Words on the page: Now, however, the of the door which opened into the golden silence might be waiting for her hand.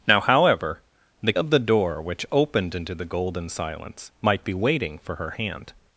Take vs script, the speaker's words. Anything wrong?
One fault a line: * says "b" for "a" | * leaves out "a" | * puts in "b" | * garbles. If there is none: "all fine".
all fine